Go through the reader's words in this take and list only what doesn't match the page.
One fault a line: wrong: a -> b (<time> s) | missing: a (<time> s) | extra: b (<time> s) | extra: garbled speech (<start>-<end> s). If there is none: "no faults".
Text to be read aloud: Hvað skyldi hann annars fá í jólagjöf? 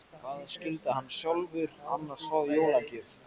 extra: sjálfur (1.2 s)